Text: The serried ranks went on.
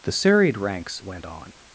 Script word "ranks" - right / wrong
right